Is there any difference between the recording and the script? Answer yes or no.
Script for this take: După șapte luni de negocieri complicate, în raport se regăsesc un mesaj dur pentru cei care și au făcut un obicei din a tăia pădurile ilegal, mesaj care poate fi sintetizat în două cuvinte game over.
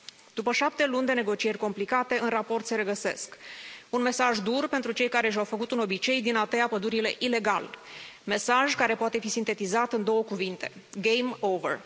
no